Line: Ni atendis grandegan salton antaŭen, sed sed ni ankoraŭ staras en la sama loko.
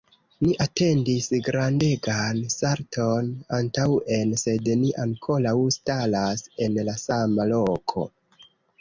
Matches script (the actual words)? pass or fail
fail